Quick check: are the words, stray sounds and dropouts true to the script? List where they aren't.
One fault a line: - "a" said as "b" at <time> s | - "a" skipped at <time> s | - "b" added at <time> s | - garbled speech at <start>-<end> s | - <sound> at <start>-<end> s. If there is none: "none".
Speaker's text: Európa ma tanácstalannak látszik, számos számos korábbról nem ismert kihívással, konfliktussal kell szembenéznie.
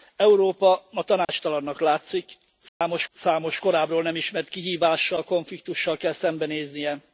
- dropout at 1.2-1.3 s
- dropout at 2.7-2.8 s